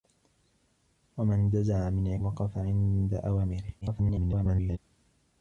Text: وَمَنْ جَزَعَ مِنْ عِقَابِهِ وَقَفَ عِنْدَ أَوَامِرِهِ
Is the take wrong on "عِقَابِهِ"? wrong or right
wrong